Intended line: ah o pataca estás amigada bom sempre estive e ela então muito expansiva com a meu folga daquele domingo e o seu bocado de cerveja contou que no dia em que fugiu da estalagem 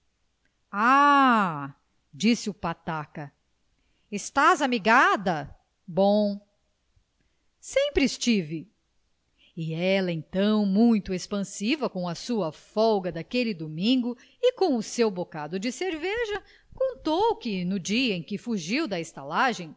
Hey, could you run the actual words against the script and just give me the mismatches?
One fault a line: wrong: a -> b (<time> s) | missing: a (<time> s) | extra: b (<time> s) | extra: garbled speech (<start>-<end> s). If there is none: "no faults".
extra: disse (2.1 s)
wrong: meu -> sua (12.1 s)
extra: com (14.5 s)